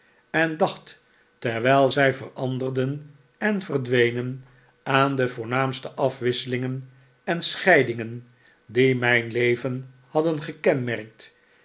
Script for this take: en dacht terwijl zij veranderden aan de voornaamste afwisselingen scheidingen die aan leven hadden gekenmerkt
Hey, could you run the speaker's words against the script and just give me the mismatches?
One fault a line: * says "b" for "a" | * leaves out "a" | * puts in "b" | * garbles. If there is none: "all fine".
* puts in "en verdwenen"
* puts in "en"
* says "mijn" for "aan"